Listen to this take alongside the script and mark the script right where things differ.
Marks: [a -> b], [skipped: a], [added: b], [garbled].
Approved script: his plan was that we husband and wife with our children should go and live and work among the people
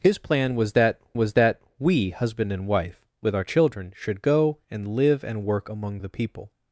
his plan was that [added: was that] we husband and wife with our children should go and live and work among the people